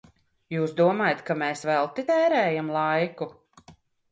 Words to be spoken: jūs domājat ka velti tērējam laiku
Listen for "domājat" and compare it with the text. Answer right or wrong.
right